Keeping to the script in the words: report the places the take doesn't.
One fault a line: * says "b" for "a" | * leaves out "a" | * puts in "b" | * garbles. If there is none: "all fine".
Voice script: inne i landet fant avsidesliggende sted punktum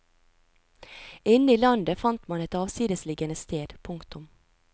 * puts in "man et"